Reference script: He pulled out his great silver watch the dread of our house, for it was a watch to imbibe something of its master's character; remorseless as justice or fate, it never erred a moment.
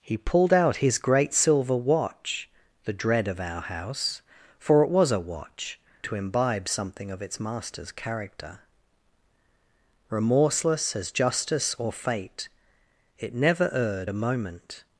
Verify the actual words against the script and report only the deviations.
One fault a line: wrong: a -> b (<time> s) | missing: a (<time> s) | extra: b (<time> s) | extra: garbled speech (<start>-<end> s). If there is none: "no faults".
no faults